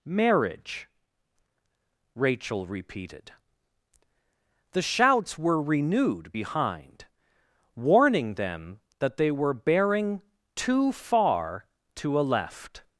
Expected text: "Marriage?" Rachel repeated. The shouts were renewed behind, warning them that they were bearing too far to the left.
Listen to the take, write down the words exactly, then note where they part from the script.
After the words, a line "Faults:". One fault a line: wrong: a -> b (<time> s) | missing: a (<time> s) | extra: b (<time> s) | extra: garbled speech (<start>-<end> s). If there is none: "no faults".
"Marriage?" Rachel repeated. The shouts were renewed behind, warning them that they were bearing too far to a left.
Faults:
wrong: the -> a (12.2 s)